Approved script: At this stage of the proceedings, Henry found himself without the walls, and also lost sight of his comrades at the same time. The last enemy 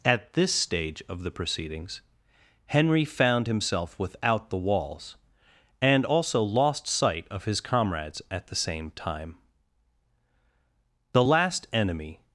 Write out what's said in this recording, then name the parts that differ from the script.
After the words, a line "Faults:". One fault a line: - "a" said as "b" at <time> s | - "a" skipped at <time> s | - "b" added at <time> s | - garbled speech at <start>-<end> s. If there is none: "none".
At this stage of the proceedings, Henry found himself without the walls, and also lost sight of his comrades at the same time. The last enemy
Faults:
none